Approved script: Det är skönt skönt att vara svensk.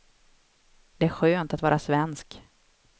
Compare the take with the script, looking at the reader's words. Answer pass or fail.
fail